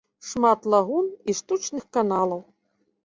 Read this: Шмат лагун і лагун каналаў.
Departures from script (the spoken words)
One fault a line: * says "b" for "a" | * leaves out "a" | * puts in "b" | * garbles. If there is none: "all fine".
* says "штучных" for "лагун"